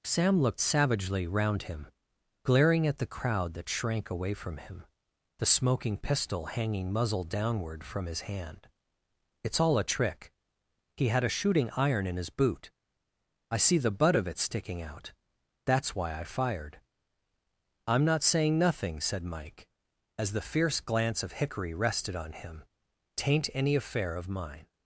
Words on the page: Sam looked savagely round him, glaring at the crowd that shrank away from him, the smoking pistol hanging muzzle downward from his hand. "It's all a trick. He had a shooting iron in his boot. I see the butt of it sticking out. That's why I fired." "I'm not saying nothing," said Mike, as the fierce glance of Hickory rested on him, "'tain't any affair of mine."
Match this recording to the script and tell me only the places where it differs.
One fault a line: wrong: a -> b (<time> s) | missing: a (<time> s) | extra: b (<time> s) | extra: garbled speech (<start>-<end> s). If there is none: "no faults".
no faults